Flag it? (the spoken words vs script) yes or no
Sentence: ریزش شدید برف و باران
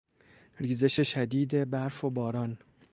no